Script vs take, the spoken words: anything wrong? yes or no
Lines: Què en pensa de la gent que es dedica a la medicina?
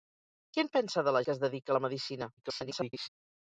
yes